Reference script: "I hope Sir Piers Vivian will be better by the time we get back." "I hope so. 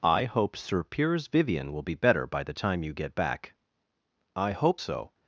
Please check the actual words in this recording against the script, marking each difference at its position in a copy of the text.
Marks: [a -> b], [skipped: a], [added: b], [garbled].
"I hope Sir Piers Vivian will be better by the time [we -> you] get back." "I hope so.